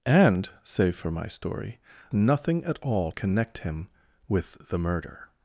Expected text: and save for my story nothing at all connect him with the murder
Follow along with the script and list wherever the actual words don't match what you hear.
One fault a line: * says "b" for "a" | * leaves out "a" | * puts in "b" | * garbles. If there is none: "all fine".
all fine